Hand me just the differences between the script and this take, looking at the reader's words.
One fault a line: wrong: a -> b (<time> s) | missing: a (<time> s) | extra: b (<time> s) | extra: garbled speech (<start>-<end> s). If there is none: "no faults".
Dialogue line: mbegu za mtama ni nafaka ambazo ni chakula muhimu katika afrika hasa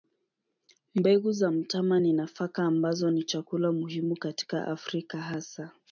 no faults